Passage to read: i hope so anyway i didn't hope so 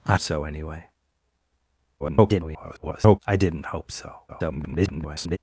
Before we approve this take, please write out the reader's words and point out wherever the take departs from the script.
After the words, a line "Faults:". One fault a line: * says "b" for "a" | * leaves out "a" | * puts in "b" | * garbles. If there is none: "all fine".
i so anyway [garbled] i didn't hope so [garbled]
Faults:
* leaves out "hope"
* garbles
* garbles